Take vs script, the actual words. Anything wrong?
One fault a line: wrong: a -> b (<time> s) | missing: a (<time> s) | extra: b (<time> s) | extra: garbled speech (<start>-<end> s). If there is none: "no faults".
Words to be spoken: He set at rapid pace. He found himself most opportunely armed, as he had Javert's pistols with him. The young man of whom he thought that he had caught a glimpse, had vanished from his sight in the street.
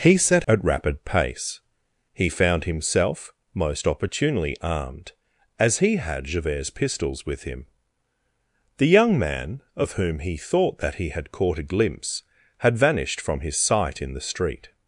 no faults